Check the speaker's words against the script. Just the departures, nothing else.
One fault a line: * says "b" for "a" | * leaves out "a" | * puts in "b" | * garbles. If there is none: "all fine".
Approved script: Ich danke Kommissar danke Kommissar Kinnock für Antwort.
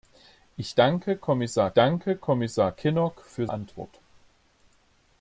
all fine